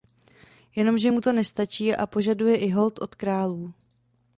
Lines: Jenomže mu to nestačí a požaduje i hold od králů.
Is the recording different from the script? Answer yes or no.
no